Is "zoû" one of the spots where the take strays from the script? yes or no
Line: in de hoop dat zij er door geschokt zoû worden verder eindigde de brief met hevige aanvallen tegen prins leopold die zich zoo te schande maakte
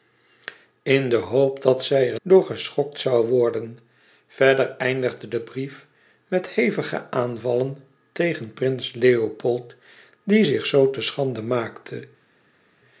no